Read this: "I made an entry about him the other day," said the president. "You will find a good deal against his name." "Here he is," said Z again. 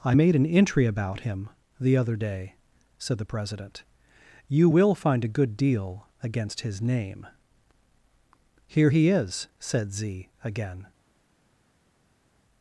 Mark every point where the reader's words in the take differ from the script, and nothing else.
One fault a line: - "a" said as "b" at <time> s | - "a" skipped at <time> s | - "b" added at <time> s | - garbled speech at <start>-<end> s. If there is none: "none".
none